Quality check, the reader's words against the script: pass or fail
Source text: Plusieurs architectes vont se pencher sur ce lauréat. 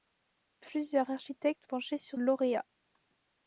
fail